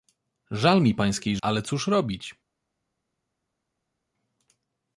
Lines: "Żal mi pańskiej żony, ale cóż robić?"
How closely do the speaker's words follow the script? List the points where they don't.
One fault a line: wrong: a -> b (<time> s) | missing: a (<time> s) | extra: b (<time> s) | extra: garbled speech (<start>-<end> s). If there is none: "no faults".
missing: żony (1.4 s)